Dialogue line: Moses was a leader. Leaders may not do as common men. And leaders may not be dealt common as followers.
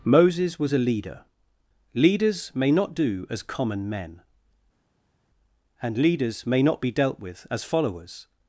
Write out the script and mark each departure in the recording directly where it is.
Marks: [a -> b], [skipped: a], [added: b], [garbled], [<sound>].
Moses was a leader. Leaders may not do as common men. And leaders may not be dealt [common -> with] as followers.